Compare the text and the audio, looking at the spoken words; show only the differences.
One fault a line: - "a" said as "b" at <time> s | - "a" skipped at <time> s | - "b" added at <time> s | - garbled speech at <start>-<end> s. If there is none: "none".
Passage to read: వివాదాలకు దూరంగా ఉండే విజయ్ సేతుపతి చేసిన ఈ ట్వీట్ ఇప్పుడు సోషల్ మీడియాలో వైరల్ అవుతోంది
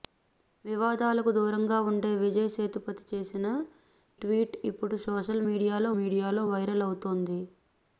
- "ఈ" skipped at 3.5 s
- "మీడియాలో" added at 6.0 s